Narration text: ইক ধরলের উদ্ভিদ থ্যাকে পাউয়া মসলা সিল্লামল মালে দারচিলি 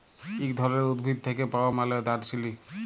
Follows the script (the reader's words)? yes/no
no